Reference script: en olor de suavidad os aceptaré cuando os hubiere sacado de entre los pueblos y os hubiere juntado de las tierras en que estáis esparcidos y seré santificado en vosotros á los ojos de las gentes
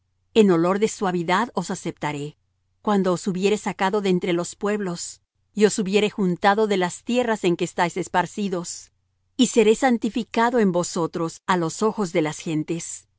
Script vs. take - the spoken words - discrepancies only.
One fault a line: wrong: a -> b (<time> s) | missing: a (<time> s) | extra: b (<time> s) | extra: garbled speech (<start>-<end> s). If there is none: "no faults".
no faults